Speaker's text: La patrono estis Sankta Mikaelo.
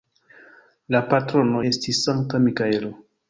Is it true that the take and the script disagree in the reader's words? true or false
false